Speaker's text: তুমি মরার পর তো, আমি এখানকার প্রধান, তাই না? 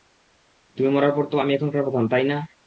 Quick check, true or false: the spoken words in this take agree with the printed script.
true